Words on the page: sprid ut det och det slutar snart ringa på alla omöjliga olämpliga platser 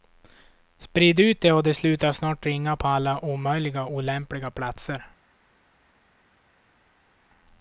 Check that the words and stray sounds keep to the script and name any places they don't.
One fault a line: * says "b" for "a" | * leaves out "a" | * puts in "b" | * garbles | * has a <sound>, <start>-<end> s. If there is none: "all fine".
all fine